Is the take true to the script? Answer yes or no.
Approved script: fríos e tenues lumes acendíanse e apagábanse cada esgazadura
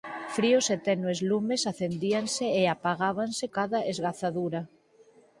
yes